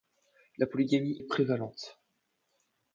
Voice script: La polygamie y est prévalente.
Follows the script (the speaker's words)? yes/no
no